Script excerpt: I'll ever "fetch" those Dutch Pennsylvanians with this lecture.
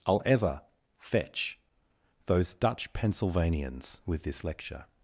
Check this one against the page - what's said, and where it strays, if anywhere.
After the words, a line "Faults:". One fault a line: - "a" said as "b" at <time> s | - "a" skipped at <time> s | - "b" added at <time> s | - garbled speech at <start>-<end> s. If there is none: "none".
I'll ever "fetch" those Dutch Pennsylvanians with this lecture.
Faults:
none